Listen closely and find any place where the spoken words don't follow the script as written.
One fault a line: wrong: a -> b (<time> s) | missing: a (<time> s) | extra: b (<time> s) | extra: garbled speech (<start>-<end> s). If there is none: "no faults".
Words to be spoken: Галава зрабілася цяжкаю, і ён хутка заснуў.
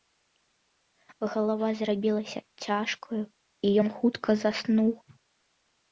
no faults